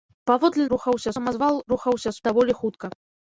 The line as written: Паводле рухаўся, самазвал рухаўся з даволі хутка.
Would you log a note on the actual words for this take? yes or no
no